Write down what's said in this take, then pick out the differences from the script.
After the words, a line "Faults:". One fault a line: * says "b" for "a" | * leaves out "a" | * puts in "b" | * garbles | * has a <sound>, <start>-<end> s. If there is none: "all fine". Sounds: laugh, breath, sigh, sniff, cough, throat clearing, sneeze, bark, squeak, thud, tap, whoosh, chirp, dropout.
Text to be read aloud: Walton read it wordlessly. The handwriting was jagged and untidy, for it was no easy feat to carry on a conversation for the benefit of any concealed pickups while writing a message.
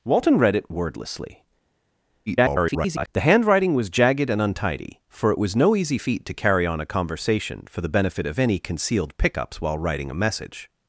Walton read it wordlessly. [garbled] The handwriting was jagged and untidy, for it was no easy feat to carry on a conversation for the benefit of any concealed pickups while writing a message.
Faults:
* garbles